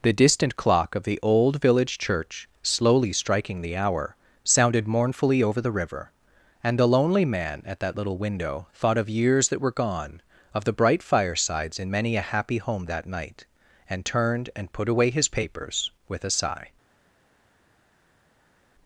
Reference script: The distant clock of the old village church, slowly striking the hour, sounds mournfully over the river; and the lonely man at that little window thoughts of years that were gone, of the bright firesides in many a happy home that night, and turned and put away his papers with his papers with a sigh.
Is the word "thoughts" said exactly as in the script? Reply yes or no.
no